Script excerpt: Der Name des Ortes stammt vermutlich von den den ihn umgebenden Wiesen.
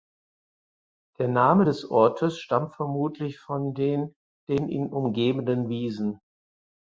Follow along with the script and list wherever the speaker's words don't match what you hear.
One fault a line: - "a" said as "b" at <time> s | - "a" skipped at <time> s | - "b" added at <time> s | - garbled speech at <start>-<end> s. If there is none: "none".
none